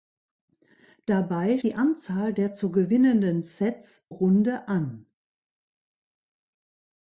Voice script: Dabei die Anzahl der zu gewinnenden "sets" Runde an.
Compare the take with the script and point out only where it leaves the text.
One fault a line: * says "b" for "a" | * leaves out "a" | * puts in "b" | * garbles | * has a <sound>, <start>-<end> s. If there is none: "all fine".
all fine